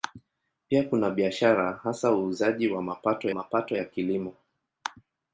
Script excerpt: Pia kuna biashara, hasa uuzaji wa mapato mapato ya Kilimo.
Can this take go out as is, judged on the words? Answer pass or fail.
pass